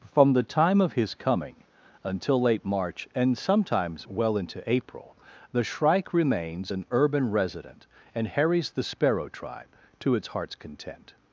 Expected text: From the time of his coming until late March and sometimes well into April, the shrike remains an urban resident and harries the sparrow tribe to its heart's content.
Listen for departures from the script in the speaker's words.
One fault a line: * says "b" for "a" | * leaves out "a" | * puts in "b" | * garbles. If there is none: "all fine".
all fine